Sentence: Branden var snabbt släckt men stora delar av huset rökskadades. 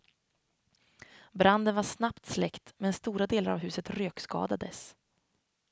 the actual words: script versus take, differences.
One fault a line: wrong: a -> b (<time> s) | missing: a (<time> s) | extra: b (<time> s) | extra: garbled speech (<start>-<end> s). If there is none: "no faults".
no faults